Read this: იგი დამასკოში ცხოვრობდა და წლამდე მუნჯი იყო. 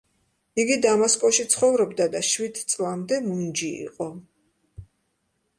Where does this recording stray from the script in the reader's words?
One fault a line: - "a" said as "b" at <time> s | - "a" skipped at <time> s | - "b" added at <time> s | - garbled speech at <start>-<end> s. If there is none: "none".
- "შვიდ" added at 2.3 s